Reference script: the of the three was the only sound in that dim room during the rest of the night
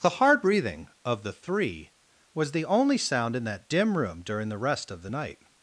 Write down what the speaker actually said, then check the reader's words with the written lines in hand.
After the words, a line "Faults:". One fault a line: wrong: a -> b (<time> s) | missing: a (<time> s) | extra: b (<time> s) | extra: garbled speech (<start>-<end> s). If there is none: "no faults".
the hard breathing of the three was the only sound in that dim room during the rest of the night
Faults:
extra: hard breathing (0.2 s)